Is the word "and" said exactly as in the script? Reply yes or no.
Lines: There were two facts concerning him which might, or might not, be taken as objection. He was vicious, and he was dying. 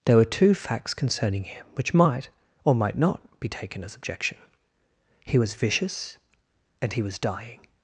yes